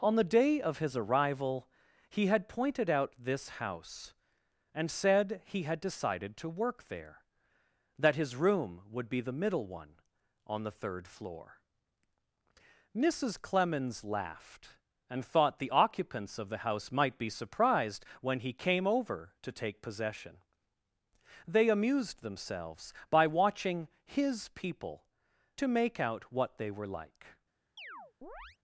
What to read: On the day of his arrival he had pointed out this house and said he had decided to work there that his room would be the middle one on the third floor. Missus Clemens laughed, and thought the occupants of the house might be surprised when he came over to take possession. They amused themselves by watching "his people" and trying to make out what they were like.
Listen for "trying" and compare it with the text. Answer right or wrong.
wrong